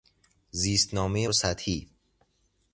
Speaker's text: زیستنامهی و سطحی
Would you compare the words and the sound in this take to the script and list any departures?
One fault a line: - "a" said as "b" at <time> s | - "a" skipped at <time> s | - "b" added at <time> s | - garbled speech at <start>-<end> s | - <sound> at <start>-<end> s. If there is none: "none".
none